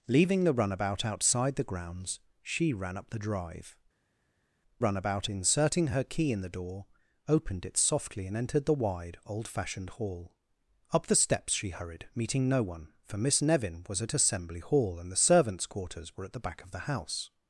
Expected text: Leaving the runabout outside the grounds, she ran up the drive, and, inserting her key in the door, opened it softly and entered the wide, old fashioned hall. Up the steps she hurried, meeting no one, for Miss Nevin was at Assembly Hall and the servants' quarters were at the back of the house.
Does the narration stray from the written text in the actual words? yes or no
yes